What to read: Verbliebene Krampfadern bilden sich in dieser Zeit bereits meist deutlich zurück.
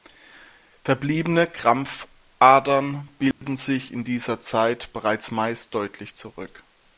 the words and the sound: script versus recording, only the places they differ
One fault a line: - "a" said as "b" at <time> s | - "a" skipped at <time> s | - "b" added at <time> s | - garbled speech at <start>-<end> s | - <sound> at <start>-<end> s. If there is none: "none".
- dropout at 3.3-3.4 s